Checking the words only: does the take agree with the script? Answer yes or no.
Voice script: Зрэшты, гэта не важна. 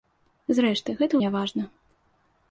yes